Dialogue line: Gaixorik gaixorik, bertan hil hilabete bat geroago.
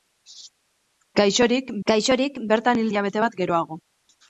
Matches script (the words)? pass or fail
pass